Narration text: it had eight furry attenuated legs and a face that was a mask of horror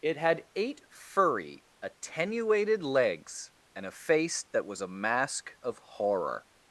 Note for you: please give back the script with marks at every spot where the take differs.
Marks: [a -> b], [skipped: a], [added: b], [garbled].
it had eight furry attenuated legs and a face that was a mask of horror